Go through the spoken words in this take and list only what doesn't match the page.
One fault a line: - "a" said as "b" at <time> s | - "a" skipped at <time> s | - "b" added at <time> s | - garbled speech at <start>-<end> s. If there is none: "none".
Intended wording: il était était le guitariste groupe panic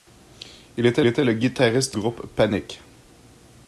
none